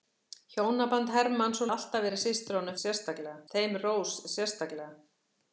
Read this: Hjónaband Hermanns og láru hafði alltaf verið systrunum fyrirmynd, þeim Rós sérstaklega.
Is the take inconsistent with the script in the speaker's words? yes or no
yes